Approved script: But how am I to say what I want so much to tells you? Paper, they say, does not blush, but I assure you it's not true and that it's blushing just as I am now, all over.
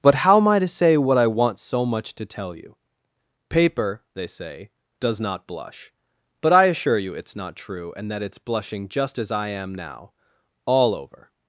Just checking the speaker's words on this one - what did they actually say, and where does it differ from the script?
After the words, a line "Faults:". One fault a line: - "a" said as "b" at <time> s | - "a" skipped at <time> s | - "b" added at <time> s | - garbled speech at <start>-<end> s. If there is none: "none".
But how am I to say what I want so much to tell you? Paper, they say, does not blush, but I assure you it's not true and that it's blushing just as I am now, all over.
Faults:
- "tells" said as "tell" at 2.3 s